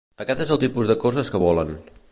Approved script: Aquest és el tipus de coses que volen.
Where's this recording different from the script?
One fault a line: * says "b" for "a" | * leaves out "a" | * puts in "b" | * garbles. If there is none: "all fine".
all fine